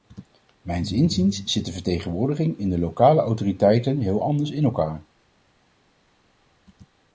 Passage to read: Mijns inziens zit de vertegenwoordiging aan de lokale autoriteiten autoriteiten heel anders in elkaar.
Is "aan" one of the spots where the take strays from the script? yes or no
yes